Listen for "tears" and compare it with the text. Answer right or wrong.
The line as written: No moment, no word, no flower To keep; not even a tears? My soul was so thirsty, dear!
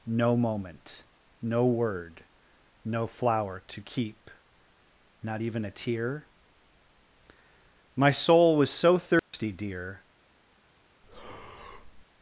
wrong